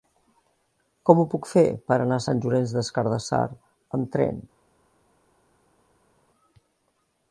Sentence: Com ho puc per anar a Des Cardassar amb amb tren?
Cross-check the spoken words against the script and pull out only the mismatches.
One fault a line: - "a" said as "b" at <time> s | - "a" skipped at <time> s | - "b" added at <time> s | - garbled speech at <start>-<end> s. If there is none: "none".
- "fer" added at 1.5 s
- "Sant Llorenç" added at 2.3 s
- "amb" skipped at 4.1 s